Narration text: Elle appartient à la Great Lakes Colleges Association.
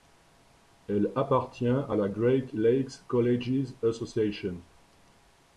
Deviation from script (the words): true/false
false